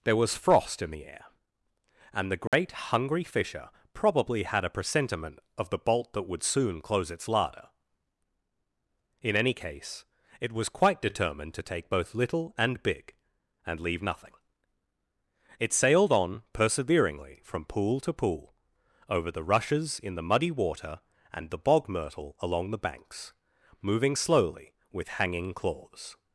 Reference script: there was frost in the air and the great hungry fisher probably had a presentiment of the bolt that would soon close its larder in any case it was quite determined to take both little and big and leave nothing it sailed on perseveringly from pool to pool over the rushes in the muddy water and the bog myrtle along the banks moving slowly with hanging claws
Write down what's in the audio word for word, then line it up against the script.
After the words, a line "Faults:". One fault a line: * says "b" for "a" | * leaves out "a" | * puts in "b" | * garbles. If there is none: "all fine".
there was frost in the air and the great hungry fisher probably had a presentiment of the bolt that would soon close its larder in any case it was quite determined to take both little and big and leave nothing it sailed on perseveringly from pool to pool over the rushes in the muddy water and the bog myrtle along the banks moving slowly with hanging claws
Faults:
all fine